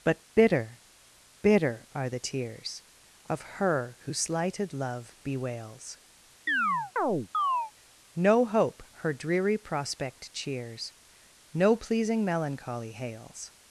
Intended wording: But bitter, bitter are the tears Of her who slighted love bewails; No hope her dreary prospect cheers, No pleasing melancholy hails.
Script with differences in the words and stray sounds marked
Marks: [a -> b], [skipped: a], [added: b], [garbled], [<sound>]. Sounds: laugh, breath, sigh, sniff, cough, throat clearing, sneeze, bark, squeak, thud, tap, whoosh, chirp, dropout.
But bitter, bitter are the tears Of her who slighted love bewails; [chirp] No hope her dreary prospect cheers, No pleasing melancholy hails.